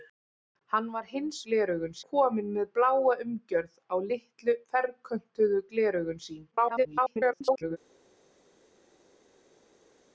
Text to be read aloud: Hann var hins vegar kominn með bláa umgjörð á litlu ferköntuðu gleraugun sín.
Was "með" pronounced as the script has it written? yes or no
yes